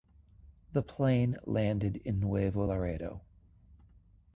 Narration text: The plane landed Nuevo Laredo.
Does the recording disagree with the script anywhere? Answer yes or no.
yes